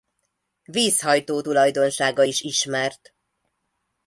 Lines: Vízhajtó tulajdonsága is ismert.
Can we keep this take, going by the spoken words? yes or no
yes